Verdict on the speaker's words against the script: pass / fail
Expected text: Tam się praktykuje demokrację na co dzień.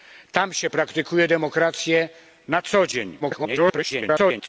fail